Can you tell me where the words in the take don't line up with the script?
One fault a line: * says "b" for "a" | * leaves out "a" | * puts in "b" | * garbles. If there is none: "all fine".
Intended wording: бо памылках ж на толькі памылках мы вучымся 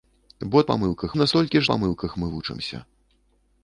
all fine